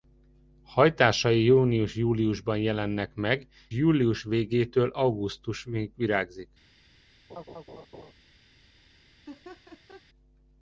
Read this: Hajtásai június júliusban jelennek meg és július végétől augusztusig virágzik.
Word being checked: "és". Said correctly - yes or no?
no